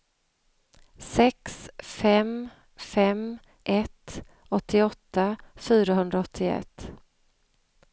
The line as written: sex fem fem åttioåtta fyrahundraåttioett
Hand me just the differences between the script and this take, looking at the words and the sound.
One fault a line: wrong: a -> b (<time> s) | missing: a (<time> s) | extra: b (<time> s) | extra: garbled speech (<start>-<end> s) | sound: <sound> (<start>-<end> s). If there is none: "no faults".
extra: ett (3.6 s)